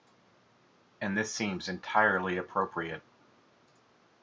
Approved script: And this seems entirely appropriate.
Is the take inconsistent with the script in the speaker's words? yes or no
no